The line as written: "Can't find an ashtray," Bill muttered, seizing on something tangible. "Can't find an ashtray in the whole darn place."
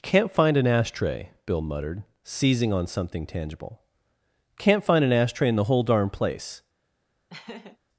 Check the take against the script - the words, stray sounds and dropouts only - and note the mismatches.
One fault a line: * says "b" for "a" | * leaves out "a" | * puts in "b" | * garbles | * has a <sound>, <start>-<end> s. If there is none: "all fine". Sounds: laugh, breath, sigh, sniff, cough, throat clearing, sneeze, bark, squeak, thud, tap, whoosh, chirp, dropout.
* has a laugh, 7.3-7.8 s